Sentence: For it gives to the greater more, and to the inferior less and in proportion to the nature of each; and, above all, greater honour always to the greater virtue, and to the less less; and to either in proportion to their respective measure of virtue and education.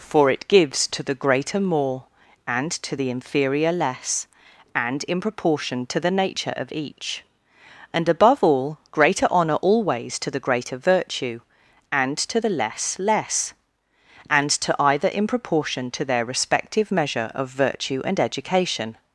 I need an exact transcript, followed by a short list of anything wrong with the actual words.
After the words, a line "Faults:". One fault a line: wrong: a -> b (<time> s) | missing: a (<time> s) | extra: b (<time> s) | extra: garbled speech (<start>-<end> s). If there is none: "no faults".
For it gives to the greater more, and to the inferior less and in proportion to the nature of each; and, above all, greater honour always to the greater virtue, and to the less less; and to either in proportion to their respective measure of virtue and education.
Faults:
no faults